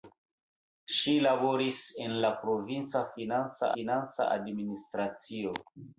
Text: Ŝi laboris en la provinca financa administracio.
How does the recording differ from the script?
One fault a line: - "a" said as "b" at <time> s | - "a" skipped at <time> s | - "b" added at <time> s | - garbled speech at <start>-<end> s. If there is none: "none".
- "financa" added at 3.8 s